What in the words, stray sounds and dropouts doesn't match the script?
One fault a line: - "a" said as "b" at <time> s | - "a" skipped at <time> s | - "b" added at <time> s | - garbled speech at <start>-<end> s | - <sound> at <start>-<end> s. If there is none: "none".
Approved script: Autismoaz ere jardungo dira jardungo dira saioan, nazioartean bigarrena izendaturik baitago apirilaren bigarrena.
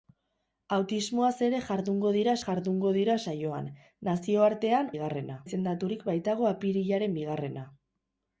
none